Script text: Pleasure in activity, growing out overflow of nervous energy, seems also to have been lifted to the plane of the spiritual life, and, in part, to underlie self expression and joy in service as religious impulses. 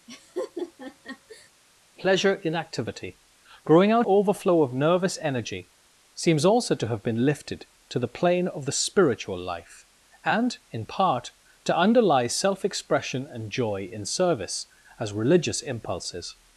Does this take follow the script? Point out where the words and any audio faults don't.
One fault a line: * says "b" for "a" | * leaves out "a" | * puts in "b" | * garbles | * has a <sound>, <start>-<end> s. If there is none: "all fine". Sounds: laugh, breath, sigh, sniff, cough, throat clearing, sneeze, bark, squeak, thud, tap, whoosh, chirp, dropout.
* has a laugh, 0.1-1.5 s